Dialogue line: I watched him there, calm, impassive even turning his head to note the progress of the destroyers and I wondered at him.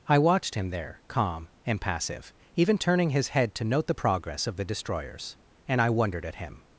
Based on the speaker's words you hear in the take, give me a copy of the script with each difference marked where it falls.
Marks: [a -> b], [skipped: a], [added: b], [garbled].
I watched him there, calm, impassive even turning his head to note the progress of the destroyers and I wondered at him.